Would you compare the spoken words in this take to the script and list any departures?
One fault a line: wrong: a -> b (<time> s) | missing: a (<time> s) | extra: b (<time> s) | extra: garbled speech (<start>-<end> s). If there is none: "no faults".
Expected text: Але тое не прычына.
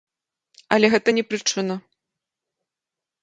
wrong: тое -> гэта (0.9 s)